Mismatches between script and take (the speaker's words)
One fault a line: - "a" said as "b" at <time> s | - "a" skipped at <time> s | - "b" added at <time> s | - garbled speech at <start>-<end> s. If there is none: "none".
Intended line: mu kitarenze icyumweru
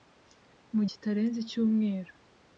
none